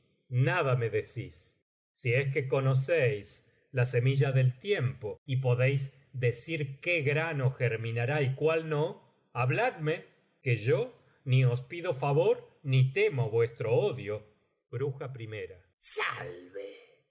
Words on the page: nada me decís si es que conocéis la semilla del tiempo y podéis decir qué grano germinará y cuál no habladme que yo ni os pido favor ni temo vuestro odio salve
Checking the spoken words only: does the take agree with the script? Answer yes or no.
yes